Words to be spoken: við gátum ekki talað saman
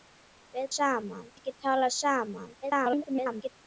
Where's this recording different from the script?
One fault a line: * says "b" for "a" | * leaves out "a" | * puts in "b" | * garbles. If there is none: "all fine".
* says "saman" for "gátum"
* garbles